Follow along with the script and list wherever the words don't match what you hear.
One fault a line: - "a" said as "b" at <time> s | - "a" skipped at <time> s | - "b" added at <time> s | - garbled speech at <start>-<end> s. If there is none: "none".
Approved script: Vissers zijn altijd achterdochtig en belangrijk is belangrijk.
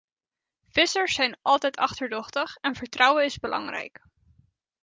- "belangrijk" said as "vertrouwen" at 2.7 s